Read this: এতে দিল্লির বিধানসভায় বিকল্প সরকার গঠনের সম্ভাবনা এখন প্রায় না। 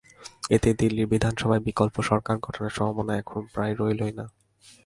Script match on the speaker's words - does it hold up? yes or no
no